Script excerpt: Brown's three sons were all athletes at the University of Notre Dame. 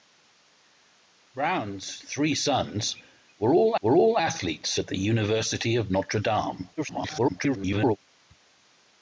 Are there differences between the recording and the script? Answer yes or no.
yes